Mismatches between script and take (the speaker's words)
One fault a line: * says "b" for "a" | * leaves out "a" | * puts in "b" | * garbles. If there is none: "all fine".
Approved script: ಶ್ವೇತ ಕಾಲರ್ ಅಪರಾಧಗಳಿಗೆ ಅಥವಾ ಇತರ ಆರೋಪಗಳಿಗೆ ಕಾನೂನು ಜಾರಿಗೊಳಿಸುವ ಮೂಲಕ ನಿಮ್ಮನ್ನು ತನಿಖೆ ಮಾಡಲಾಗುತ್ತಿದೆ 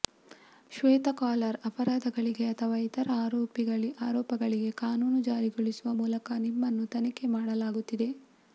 all fine